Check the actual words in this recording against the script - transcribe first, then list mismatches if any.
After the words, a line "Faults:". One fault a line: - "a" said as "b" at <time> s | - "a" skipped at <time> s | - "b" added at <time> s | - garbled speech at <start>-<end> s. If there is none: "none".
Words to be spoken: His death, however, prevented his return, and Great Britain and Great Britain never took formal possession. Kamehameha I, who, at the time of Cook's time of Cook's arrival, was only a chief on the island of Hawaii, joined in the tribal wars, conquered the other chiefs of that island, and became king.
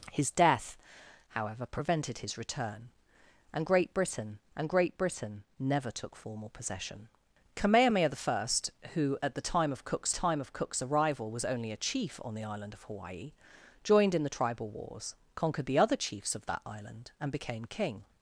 His death, however, prevented his return, and Great Britain and Great Britain never took formal possession. Kamehameha I, who, at the time of Cook's time of Cook's arrival, was only a chief on the island of Hawaii, joined in the tribal wars, conquered the other chiefs of that island, and became king.
Faults:
none